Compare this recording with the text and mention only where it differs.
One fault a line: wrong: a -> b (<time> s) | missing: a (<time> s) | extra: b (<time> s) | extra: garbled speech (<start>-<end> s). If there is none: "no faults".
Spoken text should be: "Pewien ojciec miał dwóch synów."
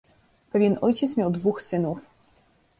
no faults